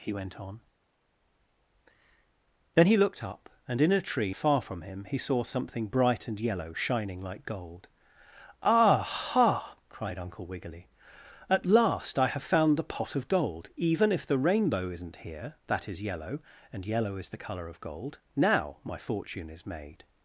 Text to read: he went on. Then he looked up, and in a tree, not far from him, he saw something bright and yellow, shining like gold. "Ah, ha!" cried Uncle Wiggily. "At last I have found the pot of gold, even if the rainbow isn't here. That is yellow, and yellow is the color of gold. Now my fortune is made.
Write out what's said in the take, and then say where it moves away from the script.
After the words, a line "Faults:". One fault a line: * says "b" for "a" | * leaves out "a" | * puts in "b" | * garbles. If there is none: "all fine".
he went on. Then he looked up, and in a tree, far from him, he saw something bright and yellow, shining like gold. "Ah, ha!" cried Uncle Wiggily. "At last I have found the pot of gold, even if the rainbow isn't here. That is yellow, and yellow is the color of gold. Now my fortune is made.
Faults:
* leaves out "not"